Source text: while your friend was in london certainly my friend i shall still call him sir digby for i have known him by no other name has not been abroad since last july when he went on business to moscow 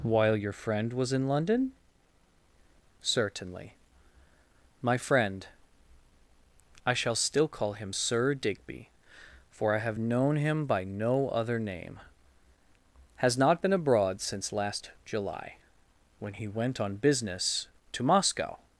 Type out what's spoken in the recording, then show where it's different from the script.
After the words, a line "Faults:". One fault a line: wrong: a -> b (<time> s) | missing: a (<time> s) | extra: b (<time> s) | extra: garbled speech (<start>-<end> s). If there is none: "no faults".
while your friend was in london certainly my friend i shall still call him sir digby for i have known him by no other name has not been abroad since last july when he went on business to moscow
Faults:
no faults